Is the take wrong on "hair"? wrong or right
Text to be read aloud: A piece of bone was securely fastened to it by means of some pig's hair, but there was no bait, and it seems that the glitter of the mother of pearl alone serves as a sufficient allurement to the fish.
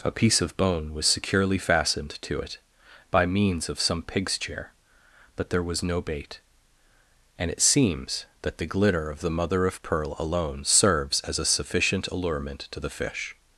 wrong